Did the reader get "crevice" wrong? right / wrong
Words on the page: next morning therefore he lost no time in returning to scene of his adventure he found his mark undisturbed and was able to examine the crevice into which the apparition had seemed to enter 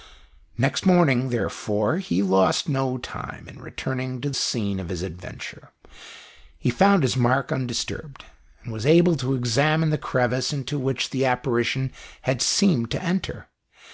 right